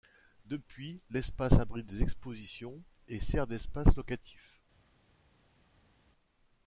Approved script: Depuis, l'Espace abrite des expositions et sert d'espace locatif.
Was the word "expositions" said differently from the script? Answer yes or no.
no